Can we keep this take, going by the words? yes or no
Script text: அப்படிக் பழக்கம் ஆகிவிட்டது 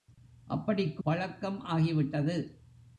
yes